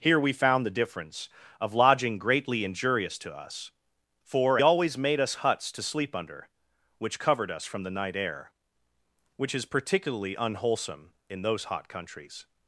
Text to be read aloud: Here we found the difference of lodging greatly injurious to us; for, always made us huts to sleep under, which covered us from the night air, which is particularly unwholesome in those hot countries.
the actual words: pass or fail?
pass